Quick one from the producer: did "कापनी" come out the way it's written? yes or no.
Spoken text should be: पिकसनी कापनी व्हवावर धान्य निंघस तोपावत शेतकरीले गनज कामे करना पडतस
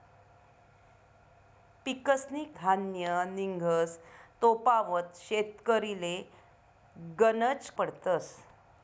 no